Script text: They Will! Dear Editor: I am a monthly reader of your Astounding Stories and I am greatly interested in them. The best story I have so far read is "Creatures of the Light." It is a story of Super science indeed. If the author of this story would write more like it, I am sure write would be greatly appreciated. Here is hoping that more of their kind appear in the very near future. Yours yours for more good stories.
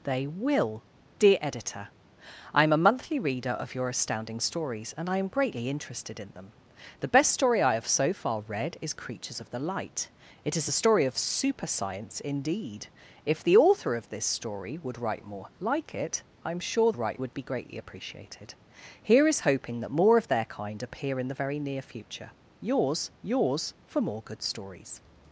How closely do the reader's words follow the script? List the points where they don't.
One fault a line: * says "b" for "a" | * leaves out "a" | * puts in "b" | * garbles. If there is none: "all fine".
all fine